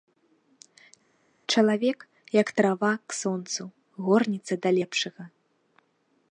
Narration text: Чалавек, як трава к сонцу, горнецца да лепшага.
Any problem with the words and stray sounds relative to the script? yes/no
no